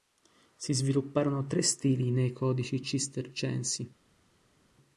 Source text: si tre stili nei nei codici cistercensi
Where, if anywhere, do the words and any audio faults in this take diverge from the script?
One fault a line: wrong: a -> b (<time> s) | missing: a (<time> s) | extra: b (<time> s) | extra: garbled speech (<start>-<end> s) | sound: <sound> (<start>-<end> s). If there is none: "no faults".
extra: svilupparono (0.7 s)
missing: nei (2.3 s)